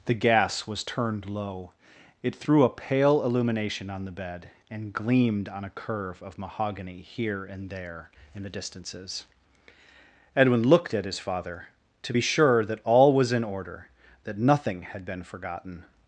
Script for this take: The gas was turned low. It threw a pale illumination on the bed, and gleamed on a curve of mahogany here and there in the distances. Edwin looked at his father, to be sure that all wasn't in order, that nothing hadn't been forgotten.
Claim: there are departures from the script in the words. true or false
true